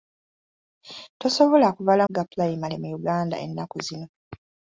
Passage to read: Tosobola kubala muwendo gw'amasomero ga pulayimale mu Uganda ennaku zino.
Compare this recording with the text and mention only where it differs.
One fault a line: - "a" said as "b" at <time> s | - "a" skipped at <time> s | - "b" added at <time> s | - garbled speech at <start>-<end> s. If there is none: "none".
- "muwendo gw'amasomero" skipped at 2.0 s